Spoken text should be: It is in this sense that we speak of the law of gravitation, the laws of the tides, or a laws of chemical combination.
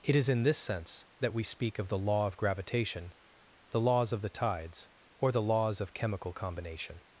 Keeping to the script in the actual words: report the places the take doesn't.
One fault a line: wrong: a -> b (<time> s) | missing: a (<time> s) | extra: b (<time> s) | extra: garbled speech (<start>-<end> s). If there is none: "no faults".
wrong: a -> the (5.3 s)